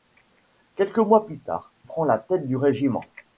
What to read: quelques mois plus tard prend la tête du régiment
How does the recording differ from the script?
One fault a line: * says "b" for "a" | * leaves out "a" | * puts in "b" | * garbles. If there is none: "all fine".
all fine